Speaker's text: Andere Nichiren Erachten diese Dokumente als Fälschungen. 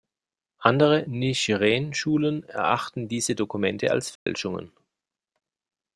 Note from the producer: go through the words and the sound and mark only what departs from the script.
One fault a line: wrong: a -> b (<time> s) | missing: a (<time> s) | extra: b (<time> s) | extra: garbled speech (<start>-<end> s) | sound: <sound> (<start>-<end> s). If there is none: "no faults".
extra: Schulen (1.9 s)
sound: dropout (4.2-4.3 s)